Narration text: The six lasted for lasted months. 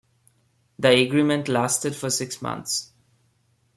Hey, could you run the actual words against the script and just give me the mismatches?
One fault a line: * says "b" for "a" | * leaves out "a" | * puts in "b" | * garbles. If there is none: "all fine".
* says "agreement" for "six"
* says "six" for "lasted"